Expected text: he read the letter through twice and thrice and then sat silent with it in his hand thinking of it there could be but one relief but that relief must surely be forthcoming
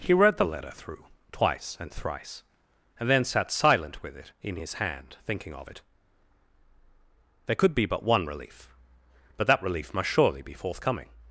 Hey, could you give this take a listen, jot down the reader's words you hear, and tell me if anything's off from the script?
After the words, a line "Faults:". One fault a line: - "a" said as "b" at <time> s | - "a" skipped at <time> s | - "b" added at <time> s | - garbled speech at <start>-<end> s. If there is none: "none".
he read the letter through twice and thrice and then sat silent with it in his hand thinking of it there could be but one relief but that relief must surely be forthcoming
Faults:
none